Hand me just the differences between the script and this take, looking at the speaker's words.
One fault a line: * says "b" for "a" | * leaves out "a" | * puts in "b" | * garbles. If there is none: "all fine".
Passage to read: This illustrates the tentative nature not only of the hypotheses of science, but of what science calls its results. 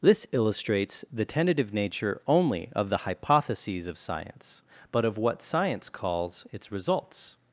* leaves out "not"